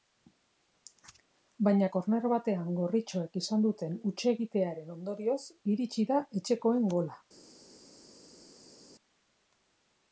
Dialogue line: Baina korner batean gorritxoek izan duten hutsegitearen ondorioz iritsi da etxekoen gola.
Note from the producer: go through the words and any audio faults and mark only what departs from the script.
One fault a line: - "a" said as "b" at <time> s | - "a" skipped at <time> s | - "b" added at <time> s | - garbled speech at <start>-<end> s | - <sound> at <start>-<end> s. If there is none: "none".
none